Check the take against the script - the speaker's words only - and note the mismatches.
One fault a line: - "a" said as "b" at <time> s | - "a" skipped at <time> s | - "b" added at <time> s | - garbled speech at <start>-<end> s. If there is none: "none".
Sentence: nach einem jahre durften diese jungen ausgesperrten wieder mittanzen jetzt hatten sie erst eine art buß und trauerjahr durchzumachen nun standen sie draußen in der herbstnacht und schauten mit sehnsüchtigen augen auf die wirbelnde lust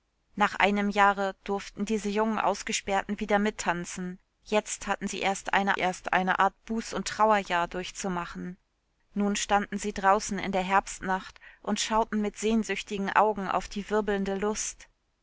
- "erst eine" added at 5.8 s